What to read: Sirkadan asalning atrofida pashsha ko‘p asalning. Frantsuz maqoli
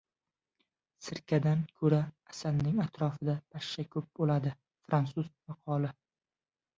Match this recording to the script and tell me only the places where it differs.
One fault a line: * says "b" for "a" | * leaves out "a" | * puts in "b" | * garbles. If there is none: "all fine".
* puts in "ko‘ra"
* says "bo‘ladi" for "asalning"